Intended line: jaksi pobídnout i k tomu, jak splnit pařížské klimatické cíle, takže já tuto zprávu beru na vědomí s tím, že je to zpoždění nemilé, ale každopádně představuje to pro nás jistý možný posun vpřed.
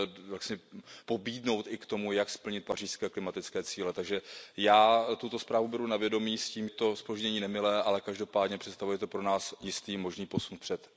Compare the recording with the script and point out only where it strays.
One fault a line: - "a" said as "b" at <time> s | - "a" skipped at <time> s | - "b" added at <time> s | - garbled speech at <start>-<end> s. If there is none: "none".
- "že je" skipped at 6.7 s